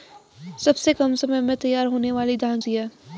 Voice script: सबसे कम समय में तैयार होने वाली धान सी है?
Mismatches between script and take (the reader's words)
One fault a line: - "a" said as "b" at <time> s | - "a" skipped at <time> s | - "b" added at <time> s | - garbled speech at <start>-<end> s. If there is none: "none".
none